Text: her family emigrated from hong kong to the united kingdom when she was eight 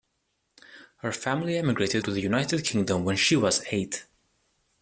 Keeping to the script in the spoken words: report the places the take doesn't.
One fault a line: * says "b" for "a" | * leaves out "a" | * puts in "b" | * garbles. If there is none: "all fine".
* leaves out "from hong kong"